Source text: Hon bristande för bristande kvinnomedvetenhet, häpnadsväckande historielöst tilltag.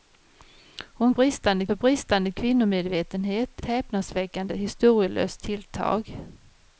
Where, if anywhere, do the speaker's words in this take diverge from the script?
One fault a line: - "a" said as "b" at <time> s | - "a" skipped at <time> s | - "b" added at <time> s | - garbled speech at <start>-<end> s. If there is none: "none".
none